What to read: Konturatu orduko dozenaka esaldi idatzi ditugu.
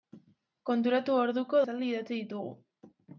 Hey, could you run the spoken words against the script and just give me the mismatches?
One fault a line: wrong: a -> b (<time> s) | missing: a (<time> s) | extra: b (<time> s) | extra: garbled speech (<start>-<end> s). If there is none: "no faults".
missing: dozenaka (1.6 s)